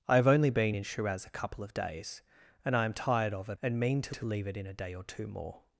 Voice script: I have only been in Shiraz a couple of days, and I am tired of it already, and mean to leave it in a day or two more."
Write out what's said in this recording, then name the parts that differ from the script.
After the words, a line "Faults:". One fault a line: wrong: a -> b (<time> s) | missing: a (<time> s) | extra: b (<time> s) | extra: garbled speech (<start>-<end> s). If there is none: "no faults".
I have only been in Shiraz a couple of days, and I am tired of it and mean to to leave it in a day or two more."
Faults:
missing: already (3.6 s)
extra: to (4.1 s)